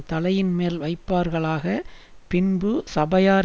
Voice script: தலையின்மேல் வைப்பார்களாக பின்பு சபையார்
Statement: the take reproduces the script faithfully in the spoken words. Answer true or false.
true